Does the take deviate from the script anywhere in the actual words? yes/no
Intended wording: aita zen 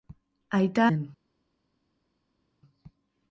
no